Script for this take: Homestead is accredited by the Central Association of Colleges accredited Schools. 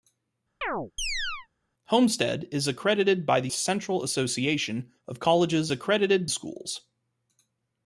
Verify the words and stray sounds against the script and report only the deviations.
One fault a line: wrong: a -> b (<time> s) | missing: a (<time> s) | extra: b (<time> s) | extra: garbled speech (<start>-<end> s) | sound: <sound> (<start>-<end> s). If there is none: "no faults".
sound: chirp (0.6-1.5 s)